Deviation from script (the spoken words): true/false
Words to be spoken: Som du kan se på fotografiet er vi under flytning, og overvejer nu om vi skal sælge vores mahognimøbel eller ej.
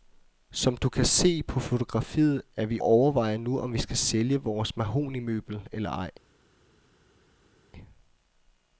true